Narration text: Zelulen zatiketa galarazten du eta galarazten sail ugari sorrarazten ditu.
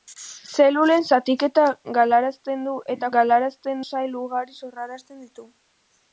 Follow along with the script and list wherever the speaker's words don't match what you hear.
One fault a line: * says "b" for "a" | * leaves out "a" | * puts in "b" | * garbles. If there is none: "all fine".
all fine